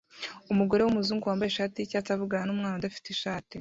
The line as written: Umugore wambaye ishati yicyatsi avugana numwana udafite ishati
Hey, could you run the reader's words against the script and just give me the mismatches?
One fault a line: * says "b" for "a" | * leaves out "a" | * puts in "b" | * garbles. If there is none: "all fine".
* puts in "wumuzungu"